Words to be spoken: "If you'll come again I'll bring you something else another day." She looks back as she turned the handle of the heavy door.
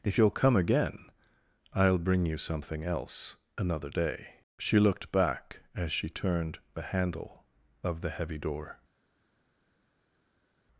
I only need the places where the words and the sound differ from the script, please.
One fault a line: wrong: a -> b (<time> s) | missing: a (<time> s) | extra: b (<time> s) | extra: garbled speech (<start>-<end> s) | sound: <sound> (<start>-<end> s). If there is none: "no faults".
wrong: looks -> looked (4.8 s)